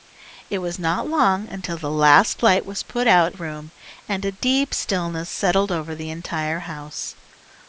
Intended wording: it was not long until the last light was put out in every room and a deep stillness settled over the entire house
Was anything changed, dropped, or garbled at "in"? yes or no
yes